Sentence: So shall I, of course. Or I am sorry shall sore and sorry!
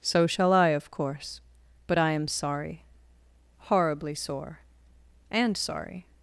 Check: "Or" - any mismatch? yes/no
yes